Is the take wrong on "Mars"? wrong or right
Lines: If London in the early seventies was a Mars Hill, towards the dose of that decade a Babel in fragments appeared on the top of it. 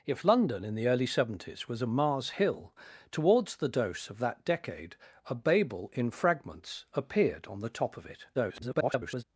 right